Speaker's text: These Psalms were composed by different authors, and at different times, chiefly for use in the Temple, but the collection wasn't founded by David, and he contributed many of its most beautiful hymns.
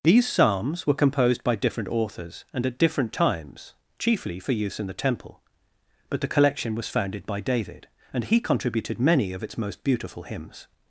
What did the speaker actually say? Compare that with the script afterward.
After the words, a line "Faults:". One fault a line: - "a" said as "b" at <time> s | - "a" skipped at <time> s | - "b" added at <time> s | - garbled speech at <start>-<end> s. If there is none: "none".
These Psalms were composed by different authors, and at different times, chiefly for use in the Temple, but the collection was founded by David, and he contributed many of its most beautiful hymns.
Faults:
- "wasn't" said as "was" at 6.7 s